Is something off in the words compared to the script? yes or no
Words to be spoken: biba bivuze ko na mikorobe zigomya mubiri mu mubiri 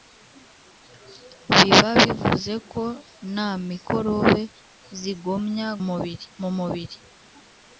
no